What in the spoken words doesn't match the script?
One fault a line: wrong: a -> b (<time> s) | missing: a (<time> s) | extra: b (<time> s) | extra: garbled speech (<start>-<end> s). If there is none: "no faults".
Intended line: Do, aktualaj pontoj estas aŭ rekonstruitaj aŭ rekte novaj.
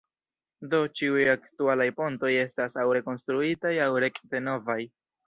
extra: ĉiuj (1.0 s)